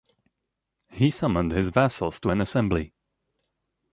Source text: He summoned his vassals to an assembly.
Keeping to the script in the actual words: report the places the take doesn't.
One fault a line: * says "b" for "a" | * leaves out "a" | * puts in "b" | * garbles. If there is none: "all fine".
all fine